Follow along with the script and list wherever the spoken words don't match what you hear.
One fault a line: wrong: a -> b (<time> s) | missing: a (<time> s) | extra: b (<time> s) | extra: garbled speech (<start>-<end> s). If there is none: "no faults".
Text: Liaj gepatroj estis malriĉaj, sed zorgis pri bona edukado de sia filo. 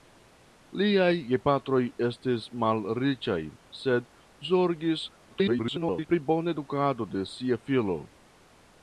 extra: garbled speech (5.3-6.1 s)